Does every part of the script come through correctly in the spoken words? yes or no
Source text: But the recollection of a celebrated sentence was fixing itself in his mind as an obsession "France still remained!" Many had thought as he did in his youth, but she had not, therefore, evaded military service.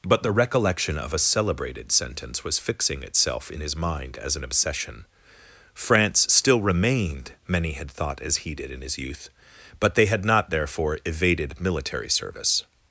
no